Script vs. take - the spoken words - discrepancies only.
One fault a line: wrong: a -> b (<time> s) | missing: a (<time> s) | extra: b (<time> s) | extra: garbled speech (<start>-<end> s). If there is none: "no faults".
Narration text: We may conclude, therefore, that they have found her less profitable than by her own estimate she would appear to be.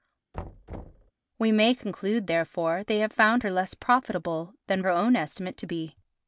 missing: that (2.8 s)
missing: by (4.8 s)
missing: she would appear (5.6 s)